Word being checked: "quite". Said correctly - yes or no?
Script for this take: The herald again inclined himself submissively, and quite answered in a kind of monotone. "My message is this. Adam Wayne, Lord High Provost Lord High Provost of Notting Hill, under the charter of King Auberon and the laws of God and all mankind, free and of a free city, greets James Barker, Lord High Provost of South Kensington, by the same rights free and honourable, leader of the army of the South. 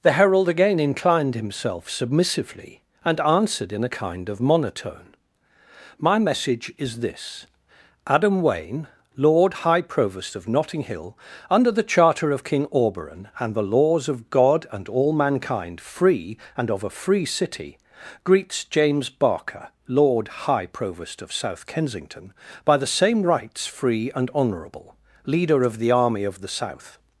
no